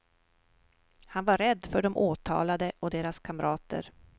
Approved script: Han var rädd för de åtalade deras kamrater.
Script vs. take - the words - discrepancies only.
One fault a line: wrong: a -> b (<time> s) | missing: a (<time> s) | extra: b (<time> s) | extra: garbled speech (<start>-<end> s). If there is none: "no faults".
extra: och (2.8 s)